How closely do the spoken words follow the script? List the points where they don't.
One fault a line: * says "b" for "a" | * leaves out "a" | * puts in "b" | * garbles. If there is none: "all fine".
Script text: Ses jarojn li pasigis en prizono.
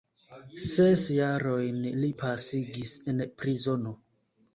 all fine